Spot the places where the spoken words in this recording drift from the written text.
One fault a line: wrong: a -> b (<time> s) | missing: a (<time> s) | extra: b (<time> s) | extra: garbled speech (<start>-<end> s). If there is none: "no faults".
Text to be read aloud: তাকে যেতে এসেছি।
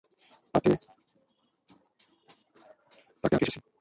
no faults